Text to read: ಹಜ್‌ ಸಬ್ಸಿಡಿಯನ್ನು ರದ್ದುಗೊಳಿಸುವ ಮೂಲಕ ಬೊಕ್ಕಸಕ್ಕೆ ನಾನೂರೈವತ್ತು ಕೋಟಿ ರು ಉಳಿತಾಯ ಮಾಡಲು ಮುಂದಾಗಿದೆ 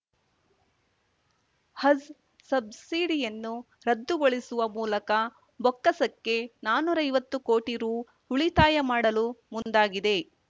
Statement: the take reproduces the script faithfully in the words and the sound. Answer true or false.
false